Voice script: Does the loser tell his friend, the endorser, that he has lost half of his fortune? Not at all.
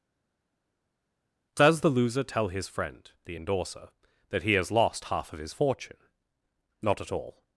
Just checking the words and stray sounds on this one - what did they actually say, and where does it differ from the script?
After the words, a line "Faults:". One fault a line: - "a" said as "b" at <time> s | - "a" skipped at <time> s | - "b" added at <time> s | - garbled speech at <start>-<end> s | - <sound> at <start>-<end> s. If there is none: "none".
Does the loser tell his friend, the endorser, that he has lost half of his fortune? Not at all.
Faults:
none